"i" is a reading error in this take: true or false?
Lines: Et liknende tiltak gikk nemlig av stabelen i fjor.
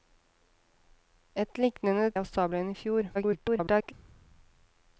false